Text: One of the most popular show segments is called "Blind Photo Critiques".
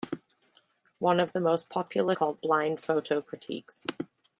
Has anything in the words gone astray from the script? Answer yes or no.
yes